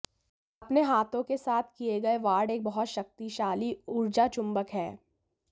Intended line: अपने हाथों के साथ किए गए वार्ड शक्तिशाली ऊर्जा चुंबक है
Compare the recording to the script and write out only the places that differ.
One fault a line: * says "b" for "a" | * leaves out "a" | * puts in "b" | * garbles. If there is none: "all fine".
* puts in "एक बहुत"